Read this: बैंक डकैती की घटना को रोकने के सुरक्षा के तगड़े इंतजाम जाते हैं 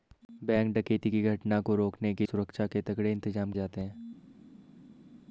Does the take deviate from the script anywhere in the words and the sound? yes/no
no